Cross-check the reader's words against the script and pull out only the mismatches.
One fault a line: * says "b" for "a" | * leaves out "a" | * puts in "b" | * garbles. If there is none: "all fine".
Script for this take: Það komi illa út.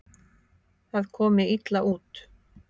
all fine